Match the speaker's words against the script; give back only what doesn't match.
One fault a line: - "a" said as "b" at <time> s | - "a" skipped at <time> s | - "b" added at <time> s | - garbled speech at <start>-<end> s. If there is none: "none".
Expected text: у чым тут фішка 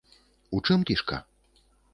- "тут" skipped at 0.9 s